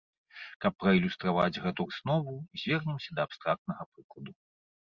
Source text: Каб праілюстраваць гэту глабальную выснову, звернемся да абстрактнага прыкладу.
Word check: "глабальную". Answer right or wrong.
wrong